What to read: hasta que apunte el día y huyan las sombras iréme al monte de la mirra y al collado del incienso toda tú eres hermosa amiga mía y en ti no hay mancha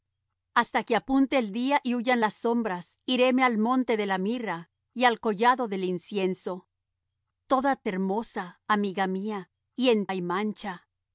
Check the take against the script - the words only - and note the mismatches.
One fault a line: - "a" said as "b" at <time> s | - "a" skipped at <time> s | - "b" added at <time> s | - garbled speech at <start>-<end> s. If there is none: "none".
- "tú eres" skipped at 7.7 s
- "ti no" skipped at 10.1 s